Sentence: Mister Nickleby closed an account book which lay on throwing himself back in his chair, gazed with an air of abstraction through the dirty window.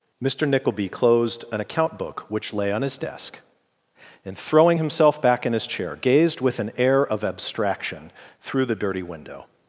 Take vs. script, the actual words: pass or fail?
fail